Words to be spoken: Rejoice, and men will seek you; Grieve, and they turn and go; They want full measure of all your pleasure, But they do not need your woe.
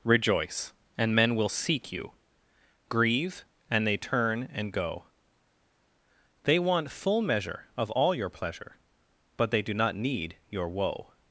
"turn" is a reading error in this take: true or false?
false